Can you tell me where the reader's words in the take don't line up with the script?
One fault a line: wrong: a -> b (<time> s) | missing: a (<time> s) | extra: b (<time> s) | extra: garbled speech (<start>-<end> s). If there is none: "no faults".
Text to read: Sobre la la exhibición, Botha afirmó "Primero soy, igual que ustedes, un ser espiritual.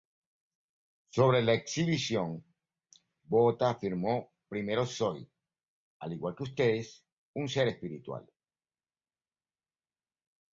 missing: la (1.5 s)
extra: al (6.0 s)